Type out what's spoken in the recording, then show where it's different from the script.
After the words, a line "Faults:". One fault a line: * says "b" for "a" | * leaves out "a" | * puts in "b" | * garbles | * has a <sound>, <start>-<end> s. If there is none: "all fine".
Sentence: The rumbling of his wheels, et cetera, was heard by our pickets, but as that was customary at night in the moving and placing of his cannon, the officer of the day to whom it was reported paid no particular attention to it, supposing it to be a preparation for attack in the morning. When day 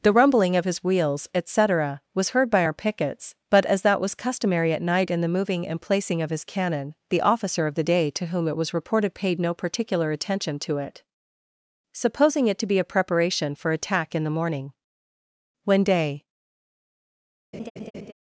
The rumbling of his wheels, et cetera, was heard by our pickets, but as that was customary at night in the moving and placing of his cannon, the officer of the day to whom it was reported paid no particular attention to it, supposing it to be a preparation for attack in the morning. When day
Faults:
* has a laugh, 17.5-18.1 s